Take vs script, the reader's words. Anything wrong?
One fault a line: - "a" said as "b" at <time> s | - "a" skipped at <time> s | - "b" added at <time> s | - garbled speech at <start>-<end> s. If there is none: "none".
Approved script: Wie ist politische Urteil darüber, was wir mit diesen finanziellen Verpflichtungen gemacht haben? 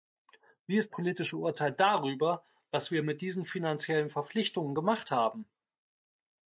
none